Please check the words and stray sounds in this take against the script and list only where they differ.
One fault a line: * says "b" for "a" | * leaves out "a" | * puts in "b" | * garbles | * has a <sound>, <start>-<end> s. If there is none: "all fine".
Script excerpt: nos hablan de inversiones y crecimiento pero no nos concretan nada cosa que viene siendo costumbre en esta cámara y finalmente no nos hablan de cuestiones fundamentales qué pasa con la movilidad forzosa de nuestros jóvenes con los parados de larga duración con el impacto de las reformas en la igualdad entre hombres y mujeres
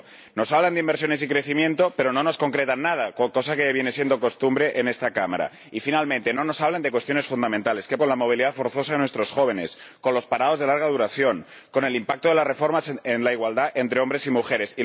* leaves out "pasa"